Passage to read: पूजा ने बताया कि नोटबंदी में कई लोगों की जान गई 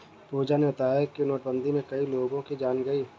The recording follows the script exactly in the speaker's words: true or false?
true